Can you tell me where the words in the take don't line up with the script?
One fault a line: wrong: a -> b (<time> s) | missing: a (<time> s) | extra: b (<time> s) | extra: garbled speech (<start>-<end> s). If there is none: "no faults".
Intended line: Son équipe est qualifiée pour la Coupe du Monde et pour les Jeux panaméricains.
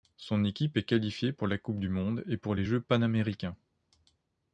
no faults